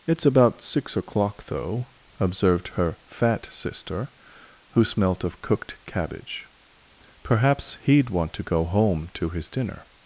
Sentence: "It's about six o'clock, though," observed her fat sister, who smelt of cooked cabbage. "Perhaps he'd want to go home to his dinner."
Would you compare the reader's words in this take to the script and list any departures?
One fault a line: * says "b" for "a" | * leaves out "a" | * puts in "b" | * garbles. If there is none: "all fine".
all fine